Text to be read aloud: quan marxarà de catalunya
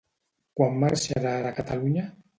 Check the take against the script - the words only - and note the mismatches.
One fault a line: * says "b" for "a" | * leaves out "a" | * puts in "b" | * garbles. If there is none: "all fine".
all fine